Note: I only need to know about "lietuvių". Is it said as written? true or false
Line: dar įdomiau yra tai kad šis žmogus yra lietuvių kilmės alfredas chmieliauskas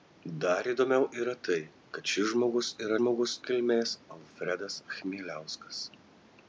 false